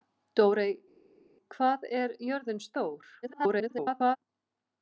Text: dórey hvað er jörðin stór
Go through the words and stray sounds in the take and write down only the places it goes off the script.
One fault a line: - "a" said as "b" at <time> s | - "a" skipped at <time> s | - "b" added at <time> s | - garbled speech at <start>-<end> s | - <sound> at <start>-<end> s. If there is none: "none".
- garbled speech at 3.2-4.2 s